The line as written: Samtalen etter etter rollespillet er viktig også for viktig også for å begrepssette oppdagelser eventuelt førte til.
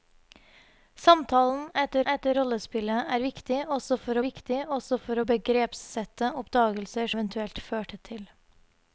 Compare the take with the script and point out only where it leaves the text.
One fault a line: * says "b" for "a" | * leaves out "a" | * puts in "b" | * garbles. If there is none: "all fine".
all fine